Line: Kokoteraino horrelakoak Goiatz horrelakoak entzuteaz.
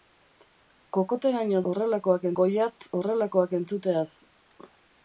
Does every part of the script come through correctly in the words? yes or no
yes